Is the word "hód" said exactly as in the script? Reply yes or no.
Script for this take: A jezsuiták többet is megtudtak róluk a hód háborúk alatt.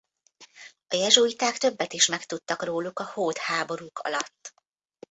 yes